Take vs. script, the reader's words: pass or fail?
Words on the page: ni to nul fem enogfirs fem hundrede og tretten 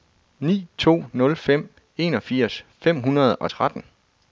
pass